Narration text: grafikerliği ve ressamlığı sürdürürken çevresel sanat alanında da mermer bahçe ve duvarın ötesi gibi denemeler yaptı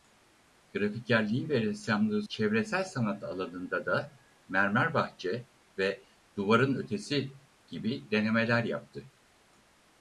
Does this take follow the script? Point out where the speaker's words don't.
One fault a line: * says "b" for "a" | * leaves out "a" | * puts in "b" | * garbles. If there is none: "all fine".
* leaves out "sürdürürken"